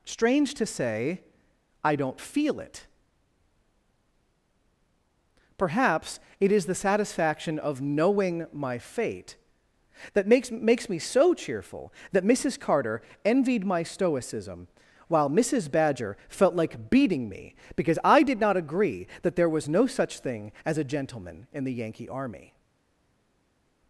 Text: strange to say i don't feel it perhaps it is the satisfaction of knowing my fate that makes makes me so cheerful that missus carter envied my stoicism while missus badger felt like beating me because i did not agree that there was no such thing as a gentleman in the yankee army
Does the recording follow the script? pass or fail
pass